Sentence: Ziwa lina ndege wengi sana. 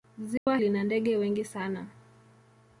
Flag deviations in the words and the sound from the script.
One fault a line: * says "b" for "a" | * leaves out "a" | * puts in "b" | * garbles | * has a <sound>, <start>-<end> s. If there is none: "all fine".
* has a dropout, 0.4-0.5 s